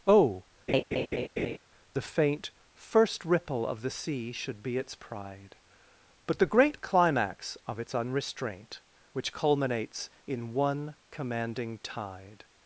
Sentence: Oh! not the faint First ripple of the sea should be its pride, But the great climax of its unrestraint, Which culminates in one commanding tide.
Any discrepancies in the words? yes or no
yes